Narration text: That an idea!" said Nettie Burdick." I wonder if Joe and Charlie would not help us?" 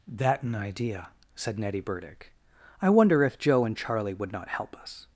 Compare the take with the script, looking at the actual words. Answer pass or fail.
pass